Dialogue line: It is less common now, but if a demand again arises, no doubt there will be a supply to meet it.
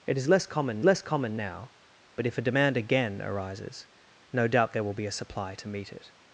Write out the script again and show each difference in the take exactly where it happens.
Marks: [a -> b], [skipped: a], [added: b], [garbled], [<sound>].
It is less common [added: less common] now, but if a demand again arises, no doubt there will be a supply to meet it.